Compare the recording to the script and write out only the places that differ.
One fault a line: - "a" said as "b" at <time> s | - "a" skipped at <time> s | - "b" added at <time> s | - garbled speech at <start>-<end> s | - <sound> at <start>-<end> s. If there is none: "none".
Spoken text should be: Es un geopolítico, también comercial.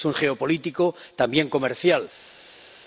none